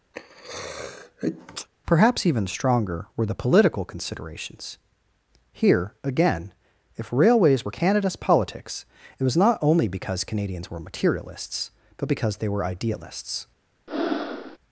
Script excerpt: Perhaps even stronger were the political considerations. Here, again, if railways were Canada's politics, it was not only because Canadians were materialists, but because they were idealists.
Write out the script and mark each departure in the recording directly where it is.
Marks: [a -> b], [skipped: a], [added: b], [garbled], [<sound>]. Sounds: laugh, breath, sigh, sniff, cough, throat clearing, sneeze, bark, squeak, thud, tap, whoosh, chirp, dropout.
[sneeze] Perhaps even stronger were the political considerations. Here, again, if railways were Canada's politics, it was not only because Canadians were materialists, but because they were idealists. [breath]